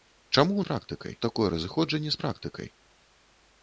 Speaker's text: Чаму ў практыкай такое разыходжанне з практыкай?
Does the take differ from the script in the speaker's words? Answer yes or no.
no